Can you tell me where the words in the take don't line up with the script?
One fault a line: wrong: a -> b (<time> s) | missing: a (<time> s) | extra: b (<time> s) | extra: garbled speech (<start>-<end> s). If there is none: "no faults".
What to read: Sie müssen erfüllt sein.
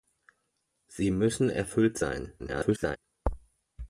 extra: garbled speech (2.4-3.0 s)